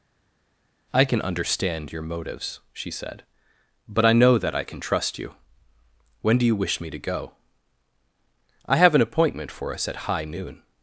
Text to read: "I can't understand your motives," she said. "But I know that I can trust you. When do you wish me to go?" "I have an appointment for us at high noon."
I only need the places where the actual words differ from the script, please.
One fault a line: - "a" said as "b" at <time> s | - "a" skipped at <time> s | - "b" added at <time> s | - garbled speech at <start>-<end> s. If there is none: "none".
- "can't" said as "can" at 1.0 s